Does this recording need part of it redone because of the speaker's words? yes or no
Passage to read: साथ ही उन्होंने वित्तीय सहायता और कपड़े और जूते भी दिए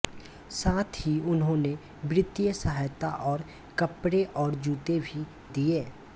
no